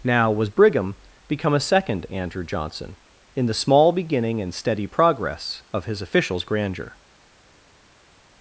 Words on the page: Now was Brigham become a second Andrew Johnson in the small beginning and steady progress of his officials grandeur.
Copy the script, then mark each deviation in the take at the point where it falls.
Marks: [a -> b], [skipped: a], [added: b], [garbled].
Now was Brigham become a second Andrew Johnson in the small beginning and steady progress of his officials grandeur.